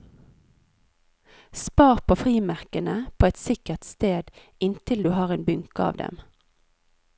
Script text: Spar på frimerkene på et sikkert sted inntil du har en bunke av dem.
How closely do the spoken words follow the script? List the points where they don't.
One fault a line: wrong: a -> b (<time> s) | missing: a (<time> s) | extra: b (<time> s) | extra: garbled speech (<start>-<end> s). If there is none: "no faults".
no faults